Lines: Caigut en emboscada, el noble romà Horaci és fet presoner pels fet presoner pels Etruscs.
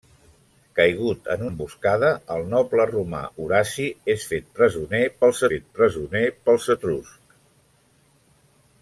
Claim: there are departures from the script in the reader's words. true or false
false